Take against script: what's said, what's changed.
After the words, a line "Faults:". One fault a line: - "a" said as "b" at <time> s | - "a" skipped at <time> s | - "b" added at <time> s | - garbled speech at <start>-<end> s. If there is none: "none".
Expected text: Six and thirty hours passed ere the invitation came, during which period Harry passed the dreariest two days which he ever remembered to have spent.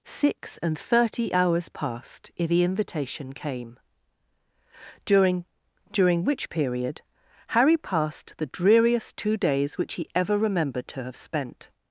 Six and thirty hours passed ere the invitation came, during during which period Harry passed the dreariest two days which he ever remembered to have spent.
Faults:
- "during" added at 5.9 s